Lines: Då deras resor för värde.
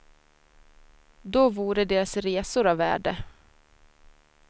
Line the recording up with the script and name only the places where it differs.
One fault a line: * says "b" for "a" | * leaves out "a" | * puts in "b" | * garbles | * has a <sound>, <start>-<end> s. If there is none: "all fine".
* puts in "vore"
* says "av" for "för"